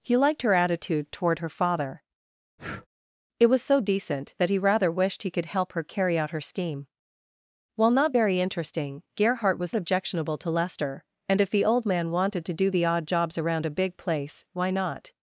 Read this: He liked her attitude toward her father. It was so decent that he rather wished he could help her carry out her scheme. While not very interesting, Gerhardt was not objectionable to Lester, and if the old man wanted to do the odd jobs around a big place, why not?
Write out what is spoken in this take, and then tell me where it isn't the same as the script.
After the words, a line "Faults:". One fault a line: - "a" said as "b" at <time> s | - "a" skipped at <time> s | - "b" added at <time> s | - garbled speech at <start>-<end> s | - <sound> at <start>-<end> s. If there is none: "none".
He liked her attitude toward her father. It was so decent that he rather wished he could help her carry out her scheme. While not very interesting, Gerhardt was objectionable to Lester, and if the old man wanted to do the odd jobs around a big place, why not?
Faults:
- breath at 2.6-2.9 s
- "not" skipped at 9.7 s